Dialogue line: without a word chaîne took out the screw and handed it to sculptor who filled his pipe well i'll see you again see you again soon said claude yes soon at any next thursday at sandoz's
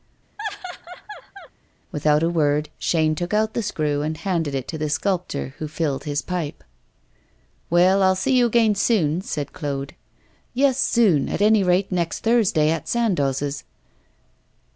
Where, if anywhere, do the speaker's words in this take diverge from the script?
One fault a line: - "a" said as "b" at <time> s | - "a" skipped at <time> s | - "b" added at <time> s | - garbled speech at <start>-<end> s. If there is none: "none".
- "the" added at 4.8 s
- "see you again" skipped at 8.7 s
- "rate" added at 11.6 s